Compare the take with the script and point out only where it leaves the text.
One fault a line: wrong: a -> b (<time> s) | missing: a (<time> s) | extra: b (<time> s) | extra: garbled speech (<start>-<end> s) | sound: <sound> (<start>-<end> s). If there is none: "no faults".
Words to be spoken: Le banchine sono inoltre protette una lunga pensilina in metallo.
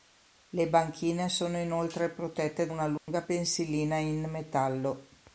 sound: dropout (3.0-3.1 s)